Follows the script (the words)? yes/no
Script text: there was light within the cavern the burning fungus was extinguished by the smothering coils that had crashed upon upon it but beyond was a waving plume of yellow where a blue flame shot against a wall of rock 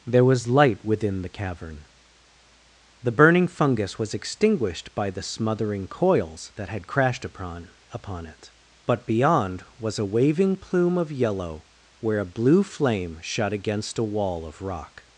yes